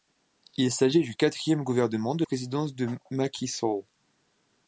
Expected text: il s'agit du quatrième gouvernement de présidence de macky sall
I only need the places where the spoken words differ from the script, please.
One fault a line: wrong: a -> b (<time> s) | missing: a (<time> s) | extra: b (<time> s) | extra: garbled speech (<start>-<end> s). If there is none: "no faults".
no faults